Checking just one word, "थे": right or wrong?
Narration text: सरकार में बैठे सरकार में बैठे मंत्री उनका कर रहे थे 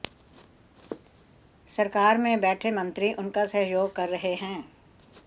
wrong